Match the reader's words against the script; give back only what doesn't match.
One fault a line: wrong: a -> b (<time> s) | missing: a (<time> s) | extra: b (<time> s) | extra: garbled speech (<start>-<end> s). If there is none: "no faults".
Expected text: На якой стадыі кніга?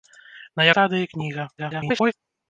missing: якой (0.7 s)
extra: garbled speech (1.6-2.1 s)